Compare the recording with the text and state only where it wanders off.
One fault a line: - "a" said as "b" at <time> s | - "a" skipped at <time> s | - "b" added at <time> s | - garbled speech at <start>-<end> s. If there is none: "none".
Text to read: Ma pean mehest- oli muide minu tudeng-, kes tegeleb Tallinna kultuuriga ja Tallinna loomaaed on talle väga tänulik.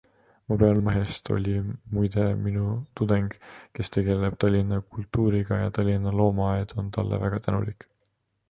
none